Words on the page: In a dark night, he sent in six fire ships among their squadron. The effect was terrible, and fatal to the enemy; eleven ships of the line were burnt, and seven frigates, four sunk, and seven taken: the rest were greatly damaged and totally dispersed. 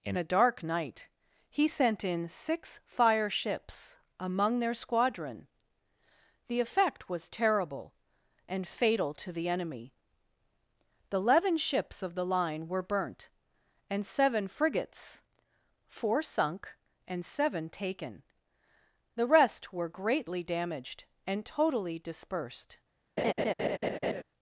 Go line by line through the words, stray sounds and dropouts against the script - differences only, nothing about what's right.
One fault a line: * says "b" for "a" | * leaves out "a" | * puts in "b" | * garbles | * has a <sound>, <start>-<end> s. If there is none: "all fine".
* puts in "the"
* has a laugh, 23.2-24.2 s